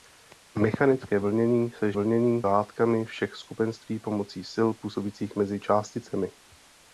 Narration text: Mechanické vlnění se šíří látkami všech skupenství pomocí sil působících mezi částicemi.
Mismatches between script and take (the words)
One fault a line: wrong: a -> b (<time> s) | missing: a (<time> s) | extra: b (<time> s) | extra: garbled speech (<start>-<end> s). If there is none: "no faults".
wrong: šíří -> vlnění (1.9 s)